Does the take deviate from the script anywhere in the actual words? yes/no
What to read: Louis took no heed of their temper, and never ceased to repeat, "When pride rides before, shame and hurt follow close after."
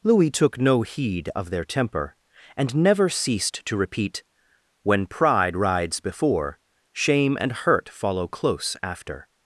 no